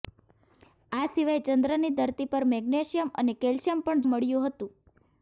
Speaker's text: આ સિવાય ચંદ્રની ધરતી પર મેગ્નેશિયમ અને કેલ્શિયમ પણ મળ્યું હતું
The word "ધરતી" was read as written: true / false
true